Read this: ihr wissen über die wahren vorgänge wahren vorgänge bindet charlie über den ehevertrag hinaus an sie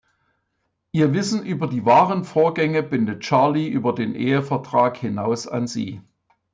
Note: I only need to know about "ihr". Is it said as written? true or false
true